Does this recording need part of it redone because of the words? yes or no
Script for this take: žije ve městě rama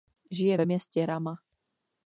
no